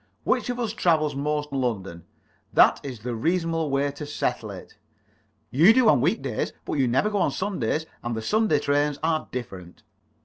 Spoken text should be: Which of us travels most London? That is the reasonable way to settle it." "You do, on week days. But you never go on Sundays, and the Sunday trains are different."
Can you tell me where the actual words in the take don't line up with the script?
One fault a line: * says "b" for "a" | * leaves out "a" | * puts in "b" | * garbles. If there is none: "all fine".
all fine